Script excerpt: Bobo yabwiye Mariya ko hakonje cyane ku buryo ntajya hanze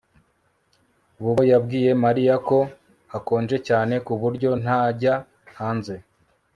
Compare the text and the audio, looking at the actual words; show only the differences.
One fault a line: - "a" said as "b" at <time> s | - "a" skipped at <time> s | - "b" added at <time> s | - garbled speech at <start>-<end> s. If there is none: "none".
none